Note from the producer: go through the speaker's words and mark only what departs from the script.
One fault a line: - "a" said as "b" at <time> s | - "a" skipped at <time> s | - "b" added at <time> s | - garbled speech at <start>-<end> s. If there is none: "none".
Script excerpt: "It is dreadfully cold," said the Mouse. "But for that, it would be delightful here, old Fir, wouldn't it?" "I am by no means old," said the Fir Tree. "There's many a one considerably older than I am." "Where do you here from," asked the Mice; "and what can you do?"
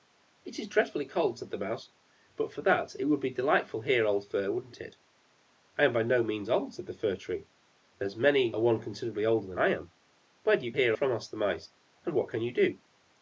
none